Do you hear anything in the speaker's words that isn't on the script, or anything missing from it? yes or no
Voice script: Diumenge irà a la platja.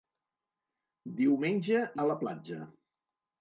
yes